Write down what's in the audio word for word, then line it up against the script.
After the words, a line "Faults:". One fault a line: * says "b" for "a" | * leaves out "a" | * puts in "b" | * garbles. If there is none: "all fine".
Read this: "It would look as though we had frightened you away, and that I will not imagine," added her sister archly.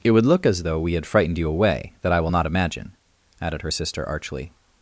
"It would look as though we had frightened you away, that I will not imagine," added her sister archly.
Faults:
* leaves out "and"